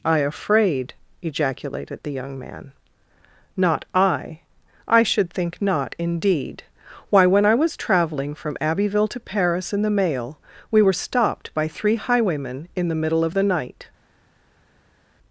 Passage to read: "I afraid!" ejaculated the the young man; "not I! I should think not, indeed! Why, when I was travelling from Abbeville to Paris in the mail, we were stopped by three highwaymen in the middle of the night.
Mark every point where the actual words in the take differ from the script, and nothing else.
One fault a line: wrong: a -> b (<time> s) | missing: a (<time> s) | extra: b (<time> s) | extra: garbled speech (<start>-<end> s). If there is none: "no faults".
missing: the (2.1 s)